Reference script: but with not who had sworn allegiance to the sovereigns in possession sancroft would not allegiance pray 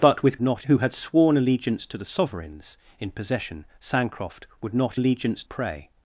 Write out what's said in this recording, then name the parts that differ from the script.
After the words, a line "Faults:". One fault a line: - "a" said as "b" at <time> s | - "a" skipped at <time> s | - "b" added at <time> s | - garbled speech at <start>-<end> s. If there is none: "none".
but with not who had sworn allegiance to the sovereigns in possession sancroft would not allegiance pray
Faults:
none